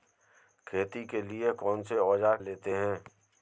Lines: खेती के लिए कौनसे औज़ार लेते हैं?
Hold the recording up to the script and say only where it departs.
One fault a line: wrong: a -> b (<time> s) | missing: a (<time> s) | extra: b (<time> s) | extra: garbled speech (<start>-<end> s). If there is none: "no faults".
no faults